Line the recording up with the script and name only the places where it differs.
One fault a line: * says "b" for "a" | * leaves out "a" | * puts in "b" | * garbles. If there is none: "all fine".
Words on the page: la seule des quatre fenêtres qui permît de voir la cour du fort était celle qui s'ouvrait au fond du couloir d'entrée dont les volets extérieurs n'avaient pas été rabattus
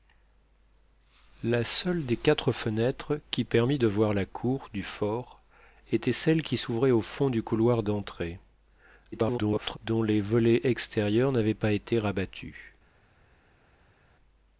* garbles